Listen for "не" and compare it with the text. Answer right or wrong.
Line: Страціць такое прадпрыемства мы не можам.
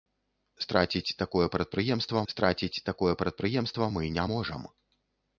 right